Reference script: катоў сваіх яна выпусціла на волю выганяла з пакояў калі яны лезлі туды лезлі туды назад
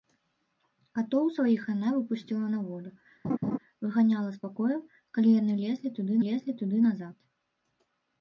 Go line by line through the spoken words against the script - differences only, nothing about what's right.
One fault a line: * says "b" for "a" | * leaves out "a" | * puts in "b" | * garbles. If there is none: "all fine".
all fine